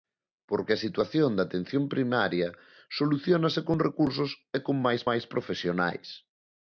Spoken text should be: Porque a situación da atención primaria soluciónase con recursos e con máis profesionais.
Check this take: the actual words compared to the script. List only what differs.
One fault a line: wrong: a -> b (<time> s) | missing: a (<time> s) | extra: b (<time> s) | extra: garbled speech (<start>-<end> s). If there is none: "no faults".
extra: máis (5.1 s)